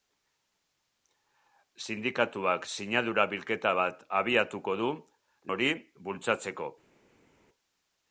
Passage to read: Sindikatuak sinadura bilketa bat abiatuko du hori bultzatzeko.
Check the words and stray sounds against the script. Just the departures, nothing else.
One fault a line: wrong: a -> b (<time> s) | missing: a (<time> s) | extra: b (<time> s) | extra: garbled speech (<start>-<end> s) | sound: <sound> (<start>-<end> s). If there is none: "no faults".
no faults